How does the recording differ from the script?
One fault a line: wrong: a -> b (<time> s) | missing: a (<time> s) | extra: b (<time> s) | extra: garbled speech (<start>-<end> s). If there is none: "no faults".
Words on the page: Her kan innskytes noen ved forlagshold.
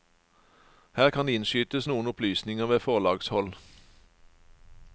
extra: opplysninger (2.1 s)